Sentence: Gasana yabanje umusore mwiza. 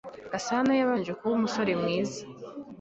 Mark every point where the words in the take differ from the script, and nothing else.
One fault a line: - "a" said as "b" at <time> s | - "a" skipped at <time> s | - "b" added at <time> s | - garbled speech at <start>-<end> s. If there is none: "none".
- "kuba" added at 1.2 s